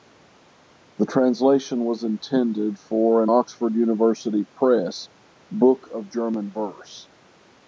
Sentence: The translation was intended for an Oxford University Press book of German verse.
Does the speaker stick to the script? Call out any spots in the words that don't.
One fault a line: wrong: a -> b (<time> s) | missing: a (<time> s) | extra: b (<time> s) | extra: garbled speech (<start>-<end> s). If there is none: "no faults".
no faults